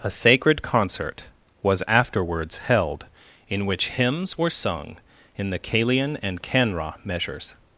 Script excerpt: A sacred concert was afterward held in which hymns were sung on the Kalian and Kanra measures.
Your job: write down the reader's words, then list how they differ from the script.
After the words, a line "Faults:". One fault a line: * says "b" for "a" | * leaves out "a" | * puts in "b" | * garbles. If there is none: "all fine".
A sacred concert was afterwards held in which hymns were sung in the Kalian and Kanra measures.
Faults:
* says "afterwards" for "afterward"
* says "in" for "on"